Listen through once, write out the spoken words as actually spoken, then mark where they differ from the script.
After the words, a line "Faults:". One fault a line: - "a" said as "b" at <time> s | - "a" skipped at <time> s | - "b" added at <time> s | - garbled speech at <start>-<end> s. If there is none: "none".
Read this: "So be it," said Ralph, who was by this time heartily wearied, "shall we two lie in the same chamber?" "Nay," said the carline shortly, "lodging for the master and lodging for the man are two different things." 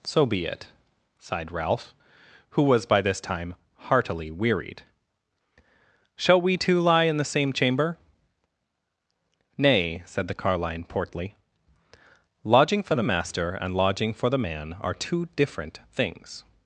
"So be it," sighed Ralph, who was by this time heartily wearied, "shall we two lie in the same chamber?" "Nay," said the carline portly, "lodging for the master and lodging for the man are two different things."
Faults:
- "said" said as "sighed" at 1.2 s
- "shortly" said as "portly" at 10.8 s